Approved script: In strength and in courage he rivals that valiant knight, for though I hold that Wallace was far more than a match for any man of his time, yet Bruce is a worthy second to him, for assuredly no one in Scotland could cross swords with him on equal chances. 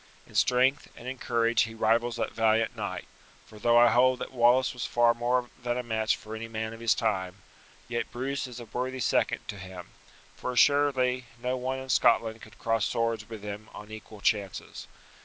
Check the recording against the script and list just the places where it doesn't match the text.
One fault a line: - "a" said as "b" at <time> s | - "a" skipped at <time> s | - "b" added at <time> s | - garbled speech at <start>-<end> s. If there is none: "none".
none